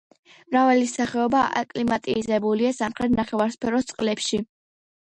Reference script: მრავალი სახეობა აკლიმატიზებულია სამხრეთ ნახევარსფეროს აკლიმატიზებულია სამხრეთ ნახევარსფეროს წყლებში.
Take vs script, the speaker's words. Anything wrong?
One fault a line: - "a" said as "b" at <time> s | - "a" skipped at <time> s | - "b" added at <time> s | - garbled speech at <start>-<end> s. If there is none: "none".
- "აკლიმატიზებულია სამხრეთ ნახევარსფეროს" skipped at 3.9 s